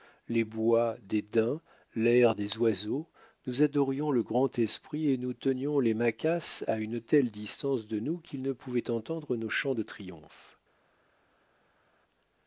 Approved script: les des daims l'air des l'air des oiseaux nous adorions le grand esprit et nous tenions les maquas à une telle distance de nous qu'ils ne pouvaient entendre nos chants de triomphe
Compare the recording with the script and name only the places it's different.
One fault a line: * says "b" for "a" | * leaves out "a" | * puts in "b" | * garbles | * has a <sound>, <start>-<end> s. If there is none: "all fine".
* puts in "bois"
* leaves out "l'air des"